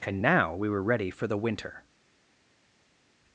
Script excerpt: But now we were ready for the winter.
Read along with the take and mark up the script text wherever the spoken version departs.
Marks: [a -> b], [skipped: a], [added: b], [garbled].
[But -> And] now we were ready for the winter.